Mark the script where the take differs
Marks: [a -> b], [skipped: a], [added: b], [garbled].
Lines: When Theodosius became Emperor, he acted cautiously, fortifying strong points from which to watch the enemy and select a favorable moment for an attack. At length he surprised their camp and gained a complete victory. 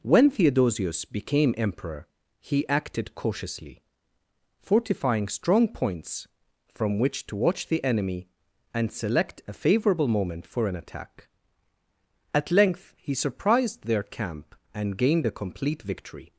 When Theodosius became Emperor, he acted cautiously, fortifying strong points from which to watch the enemy and select a favorable moment for an attack. At length he surprised their camp and gained a complete victory.